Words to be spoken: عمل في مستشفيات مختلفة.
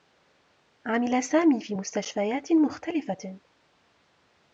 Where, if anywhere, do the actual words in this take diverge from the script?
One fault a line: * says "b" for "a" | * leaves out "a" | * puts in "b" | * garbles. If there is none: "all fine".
* puts in "سامي"